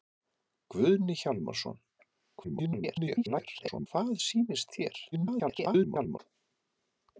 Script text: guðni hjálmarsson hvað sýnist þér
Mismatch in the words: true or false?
true